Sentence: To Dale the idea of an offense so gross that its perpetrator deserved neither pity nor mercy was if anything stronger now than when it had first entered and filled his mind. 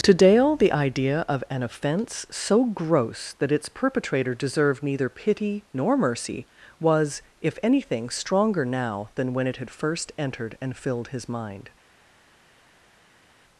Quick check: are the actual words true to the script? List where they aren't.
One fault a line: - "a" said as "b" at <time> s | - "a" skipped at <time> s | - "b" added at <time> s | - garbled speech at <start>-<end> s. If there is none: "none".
none